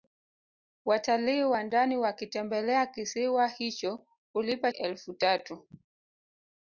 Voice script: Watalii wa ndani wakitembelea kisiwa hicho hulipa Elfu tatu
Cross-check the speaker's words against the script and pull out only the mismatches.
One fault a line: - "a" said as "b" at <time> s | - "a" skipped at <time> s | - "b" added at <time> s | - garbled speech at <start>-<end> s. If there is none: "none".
none